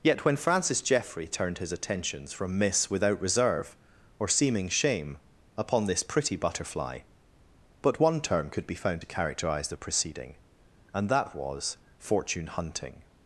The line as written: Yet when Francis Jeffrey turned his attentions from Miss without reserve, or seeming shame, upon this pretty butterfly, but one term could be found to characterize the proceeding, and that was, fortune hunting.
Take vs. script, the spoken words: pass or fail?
pass